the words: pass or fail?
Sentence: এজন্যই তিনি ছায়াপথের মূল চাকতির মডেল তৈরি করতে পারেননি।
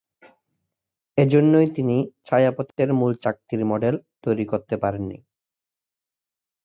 pass